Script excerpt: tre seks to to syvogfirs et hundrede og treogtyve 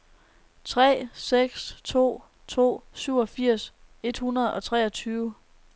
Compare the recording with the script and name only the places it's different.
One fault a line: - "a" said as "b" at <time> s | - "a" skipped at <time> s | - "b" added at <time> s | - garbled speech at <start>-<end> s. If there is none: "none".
none